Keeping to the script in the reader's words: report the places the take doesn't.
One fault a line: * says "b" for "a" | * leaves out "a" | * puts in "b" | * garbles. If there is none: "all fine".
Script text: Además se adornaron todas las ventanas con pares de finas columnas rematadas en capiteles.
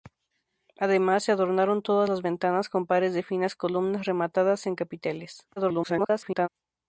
* garbles